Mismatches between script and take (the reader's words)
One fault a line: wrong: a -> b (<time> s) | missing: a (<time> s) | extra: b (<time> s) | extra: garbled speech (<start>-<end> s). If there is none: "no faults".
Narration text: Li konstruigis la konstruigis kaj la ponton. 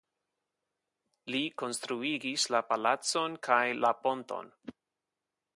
wrong: konstruigis -> palacon (2.7 s)